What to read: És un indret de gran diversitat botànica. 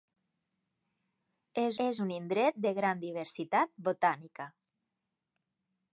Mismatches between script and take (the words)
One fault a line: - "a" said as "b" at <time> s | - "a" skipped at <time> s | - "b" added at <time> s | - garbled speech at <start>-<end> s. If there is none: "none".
- "és" added at 1.9 s